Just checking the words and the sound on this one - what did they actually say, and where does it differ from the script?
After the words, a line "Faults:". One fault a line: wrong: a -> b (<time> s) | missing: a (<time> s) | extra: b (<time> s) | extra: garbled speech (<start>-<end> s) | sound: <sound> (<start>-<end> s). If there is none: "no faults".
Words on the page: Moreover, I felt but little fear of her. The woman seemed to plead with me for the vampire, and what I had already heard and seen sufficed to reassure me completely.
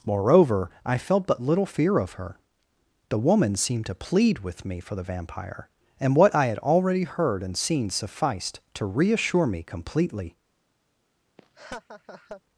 Moreover, I felt but little fear of her. The woman seemed to plead with me for the vampire, and what I had already heard and seen sufficed to reassure me completely.
Faults:
sound: laugh (11.4-12.4 s)